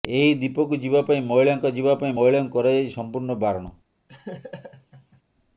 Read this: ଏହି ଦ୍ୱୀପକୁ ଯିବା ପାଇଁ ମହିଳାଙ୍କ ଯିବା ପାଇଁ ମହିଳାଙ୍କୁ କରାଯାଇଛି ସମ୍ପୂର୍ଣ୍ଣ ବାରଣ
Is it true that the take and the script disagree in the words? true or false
false